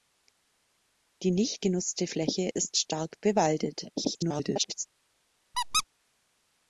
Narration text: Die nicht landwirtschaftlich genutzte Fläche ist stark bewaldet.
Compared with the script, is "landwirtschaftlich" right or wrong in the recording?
wrong